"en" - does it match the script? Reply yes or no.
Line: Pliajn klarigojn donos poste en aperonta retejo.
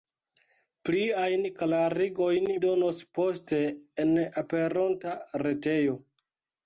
yes